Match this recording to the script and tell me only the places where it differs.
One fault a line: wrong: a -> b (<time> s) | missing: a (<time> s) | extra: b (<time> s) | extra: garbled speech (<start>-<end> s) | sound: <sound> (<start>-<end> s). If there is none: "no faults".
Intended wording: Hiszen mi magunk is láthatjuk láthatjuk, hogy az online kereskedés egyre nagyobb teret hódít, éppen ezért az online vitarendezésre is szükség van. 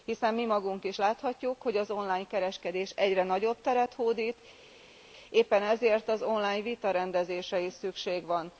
missing: láthatjuk (1.6 s)